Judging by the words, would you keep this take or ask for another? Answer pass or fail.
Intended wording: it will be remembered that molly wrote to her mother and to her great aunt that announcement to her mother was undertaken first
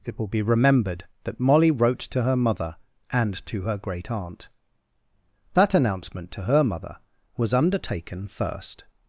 pass